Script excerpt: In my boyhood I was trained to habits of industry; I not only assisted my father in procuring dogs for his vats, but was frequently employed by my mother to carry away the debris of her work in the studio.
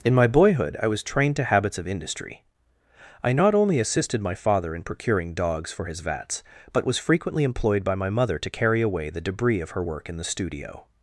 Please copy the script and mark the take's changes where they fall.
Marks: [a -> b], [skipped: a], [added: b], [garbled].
In my boyhood I was trained to habits of industry; I not only assisted my father in procuring dogs for his vats, but was frequently employed by my mother to carry away the debris of her work in the studio.